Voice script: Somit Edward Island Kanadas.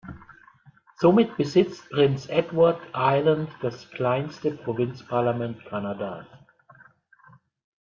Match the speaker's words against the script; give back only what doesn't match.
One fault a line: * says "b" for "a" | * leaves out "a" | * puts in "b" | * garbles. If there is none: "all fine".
* puts in "besitzt Prince"
* puts in "das kleinste Provinzparlament"